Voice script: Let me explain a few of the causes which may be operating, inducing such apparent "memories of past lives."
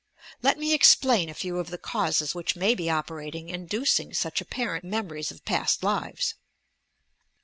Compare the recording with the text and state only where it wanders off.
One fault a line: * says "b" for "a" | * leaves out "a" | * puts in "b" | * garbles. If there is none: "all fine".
all fine